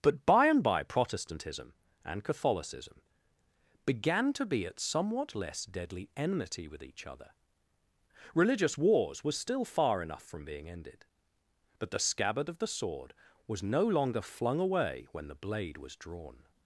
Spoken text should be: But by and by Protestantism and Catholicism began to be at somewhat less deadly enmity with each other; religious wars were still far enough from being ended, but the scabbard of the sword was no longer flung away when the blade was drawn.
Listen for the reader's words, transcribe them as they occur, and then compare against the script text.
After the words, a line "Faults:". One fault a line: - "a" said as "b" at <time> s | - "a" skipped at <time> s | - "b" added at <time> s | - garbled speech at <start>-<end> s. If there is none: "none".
But by and by Protestantism and Catholicism began to be at somewhat less deadly enmity with each other; religious wars were still far enough from being ended, but the scabbard of the sword was no longer flung away when the blade was drawn.
Faults:
none